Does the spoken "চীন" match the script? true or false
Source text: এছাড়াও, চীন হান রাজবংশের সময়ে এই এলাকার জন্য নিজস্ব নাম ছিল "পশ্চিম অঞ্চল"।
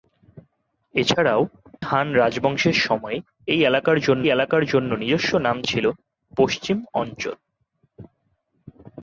false